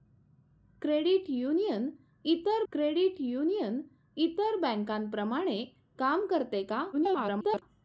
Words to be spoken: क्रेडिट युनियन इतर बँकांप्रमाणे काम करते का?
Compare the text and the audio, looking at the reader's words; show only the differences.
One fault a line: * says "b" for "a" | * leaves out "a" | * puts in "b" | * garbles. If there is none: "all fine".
* puts in "क्रेडिट युनियन इतर"
* garbles